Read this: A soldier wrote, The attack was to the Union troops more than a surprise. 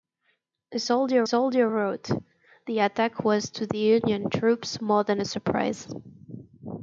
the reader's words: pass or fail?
fail